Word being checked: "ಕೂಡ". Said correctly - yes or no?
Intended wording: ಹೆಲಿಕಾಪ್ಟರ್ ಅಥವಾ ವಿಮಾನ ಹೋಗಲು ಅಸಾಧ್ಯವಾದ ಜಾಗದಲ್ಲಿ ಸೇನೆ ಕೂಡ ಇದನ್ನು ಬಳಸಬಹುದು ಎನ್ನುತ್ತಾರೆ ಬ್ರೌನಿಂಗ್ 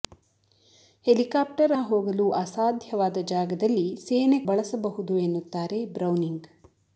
no